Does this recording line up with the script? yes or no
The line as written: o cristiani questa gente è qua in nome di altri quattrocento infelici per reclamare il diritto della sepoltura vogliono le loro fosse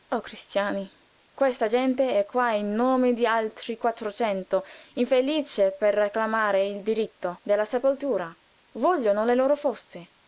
yes